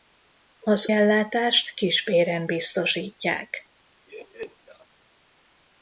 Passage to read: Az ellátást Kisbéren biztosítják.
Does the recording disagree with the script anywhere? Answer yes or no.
no